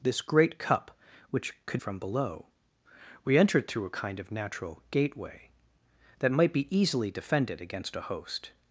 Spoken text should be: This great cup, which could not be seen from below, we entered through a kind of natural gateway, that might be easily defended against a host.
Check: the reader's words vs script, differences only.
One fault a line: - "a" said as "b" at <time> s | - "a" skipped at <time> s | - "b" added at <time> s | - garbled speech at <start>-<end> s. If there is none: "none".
- "not be seen" skipped at 1.8 s